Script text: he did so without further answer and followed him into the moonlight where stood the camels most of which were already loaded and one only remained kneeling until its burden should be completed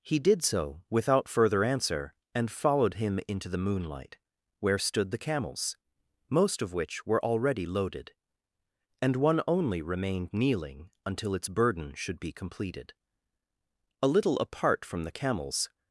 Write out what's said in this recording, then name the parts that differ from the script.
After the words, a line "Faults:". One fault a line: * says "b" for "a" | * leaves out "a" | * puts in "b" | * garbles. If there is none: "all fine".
he did so without further answer and followed him into the moonlight where stood the camels most of which were already loaded and one only remained kneeling until its burden should be completed a little apart from the camels
Faults:
* puts in "a little apart from the camels"